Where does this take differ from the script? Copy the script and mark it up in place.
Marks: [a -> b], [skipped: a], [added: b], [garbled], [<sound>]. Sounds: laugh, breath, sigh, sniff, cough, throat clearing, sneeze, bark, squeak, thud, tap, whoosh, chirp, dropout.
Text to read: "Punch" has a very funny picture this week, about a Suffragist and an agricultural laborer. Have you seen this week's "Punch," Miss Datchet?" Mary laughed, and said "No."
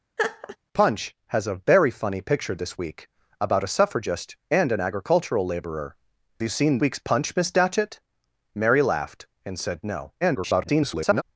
[laugh] "Punch" has a very funny picture this week, about a Suffragist and an agricultural laborer. [skipped: Have] you seen [skipped: this] week's "Punch," Miss Datchet?" Mary laughed, and said "No." [garbled]